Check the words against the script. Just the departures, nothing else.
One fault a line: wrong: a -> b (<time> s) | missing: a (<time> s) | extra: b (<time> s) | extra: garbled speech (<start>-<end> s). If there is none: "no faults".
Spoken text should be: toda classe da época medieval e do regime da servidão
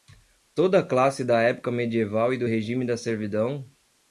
no faults